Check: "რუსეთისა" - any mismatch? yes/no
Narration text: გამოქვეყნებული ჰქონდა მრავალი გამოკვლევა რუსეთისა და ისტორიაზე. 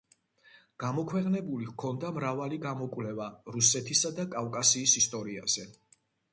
no